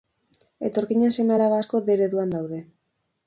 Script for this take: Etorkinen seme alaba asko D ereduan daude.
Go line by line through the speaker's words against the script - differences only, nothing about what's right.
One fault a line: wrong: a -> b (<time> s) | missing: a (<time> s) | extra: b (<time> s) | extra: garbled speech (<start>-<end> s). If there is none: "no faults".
no faults